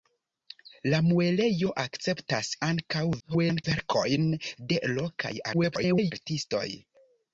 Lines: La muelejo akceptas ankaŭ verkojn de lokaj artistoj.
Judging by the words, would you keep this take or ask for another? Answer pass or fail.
fail